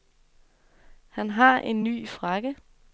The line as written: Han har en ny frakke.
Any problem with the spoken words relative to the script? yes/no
no